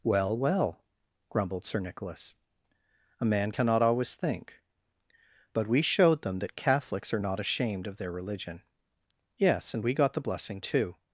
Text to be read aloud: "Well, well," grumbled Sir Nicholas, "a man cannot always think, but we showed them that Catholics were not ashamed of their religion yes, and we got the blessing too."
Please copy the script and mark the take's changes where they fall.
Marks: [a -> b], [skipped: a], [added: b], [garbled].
"Well, well," grumbled Sir Nicholas, "a man cannot always think, but we showed them that Catholics [were -> are] not ashamed of their religion yes, and we got the blessing too."